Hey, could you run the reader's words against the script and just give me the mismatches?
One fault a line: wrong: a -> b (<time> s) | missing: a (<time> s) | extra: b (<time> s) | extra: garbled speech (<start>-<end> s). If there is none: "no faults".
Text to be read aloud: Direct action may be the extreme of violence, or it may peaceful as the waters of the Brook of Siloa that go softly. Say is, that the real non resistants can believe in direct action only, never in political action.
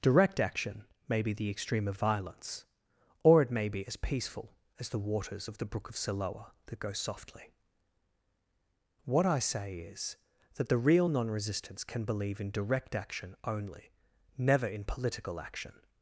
extra: be as (3.7 s)
extra: What I (9.0 s)